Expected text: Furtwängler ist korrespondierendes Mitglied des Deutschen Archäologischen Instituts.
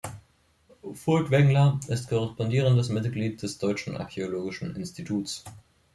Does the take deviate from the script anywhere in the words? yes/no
no